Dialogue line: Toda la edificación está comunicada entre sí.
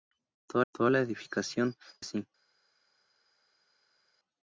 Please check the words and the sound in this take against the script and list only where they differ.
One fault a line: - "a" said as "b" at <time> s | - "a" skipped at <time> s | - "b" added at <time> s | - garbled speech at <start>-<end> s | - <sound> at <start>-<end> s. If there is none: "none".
- "toda" added at 0.7 s
- "está comunicada entre" skipped at 1.8 s